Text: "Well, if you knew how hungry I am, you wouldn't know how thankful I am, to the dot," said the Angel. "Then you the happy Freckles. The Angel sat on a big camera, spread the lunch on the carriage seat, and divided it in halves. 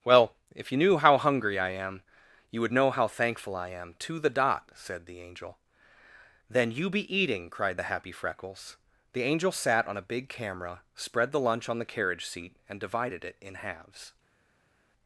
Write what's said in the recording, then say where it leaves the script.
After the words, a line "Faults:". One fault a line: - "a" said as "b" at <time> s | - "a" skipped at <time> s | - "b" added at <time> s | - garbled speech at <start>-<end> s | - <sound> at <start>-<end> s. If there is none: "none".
"Well, if you knew how hungry I am, you would know how thankful I am, to the dot," said the Angel. "Then you be eating," cried the happy Freckles. The Angel sat on a big camera, spread the lunch on the carriage seat, and divided it in halves.
Faults:
- "wouldn't" said as "would" at 2.6 s
- "be eating cried" added at 6.9 s